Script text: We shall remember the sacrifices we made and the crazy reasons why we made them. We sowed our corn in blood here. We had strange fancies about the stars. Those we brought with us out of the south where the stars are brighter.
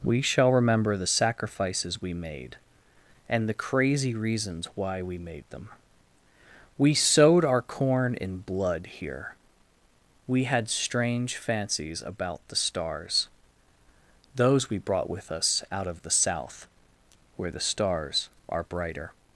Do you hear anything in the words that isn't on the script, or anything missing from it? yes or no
no